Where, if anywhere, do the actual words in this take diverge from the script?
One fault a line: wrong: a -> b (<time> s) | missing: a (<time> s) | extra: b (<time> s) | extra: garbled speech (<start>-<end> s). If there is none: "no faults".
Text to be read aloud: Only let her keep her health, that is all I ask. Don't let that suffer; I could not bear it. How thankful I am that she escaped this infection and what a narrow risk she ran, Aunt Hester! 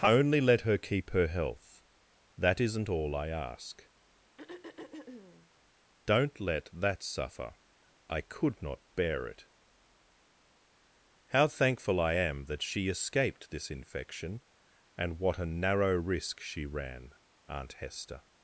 wrong: is -> isn't (2.6 s)